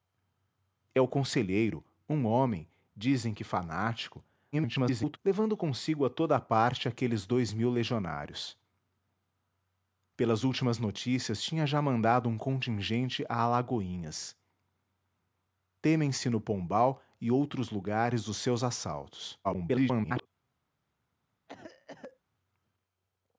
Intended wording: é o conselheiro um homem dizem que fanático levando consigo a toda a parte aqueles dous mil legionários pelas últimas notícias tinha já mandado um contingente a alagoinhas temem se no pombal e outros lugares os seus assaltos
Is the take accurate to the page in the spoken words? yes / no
no